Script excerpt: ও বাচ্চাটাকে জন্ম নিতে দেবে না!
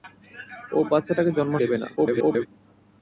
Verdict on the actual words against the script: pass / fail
fail